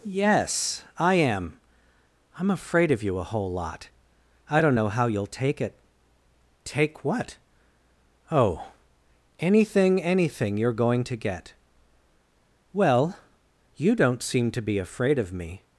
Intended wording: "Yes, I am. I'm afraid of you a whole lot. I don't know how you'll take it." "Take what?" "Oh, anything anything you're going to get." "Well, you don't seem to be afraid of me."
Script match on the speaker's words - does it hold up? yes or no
yes